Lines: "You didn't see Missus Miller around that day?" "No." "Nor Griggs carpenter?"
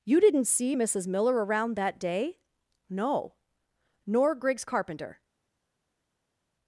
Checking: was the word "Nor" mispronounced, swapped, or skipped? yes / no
no